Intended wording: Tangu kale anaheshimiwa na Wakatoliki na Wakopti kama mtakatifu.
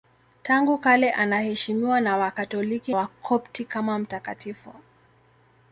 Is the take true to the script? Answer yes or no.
no